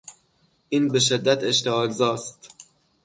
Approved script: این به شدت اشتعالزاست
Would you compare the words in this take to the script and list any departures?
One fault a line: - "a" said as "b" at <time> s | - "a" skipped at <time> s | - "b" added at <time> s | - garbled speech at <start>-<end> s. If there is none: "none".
none